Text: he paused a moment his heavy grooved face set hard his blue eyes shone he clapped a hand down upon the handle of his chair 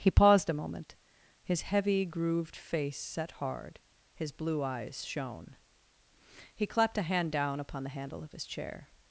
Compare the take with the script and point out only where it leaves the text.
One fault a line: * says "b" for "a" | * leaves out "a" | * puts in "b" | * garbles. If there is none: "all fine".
all fine